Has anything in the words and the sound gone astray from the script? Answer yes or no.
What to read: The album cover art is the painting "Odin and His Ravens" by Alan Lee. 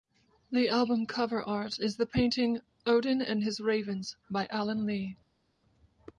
no